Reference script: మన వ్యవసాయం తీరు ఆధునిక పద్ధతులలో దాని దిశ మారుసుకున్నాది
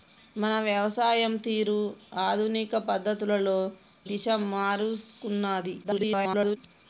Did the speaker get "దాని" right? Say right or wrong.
wrong